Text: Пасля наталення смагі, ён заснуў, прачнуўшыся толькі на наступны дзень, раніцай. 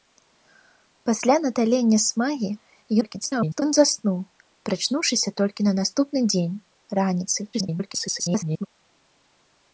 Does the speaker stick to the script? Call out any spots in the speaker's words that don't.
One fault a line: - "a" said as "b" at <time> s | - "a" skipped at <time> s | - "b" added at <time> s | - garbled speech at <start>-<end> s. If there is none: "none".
- garbled speech at 3.0-3.6 s
- garbled speech at 7.5-8.7 s